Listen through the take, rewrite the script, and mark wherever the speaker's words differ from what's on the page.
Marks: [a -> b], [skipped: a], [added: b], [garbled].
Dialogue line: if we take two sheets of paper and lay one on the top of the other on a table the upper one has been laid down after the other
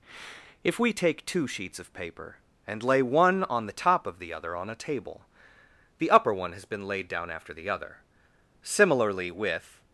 if we take two sheets of paper and lay one on the top of the other on a table the upper one has been laid down after the other [added: similarly with]